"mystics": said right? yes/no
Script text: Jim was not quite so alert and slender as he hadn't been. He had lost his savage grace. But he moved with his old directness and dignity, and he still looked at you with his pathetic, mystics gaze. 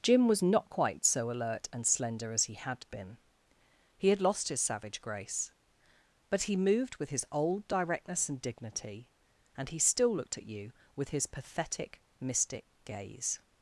no